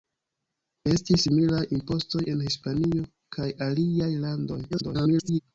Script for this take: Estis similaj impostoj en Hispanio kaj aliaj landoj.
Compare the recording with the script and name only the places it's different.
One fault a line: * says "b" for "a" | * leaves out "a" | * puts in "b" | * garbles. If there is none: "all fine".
* garbles